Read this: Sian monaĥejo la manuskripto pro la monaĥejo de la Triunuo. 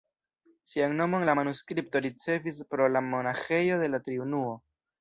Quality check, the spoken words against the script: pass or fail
fail